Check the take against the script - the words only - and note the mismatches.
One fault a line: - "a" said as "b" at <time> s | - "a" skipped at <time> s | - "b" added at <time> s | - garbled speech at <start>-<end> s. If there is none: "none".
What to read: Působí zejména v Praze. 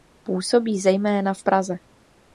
none